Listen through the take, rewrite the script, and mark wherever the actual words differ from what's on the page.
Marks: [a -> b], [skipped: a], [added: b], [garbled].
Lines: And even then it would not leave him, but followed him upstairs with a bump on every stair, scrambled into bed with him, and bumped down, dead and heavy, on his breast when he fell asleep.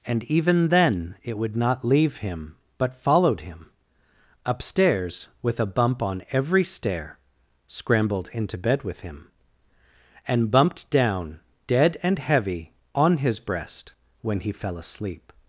And even then it would not leave him, but followed him upstairs with a bump on every stair, scrambled into bed with him, and bumped down, dead and heavy, on his breast when he fell asleep.